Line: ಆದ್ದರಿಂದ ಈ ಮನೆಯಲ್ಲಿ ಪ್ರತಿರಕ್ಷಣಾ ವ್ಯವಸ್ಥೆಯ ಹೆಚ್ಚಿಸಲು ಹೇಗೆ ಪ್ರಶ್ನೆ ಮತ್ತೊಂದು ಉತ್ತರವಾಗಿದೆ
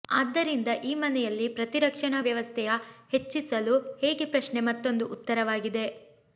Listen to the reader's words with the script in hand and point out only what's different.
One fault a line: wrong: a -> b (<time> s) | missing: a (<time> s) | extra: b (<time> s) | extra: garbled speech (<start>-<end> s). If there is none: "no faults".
no faults